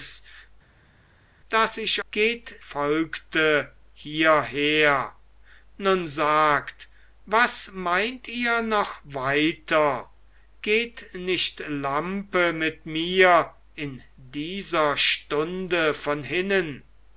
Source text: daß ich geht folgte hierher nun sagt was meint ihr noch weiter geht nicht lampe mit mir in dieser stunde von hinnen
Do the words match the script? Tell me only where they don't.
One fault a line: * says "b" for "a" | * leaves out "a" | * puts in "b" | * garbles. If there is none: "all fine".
all fine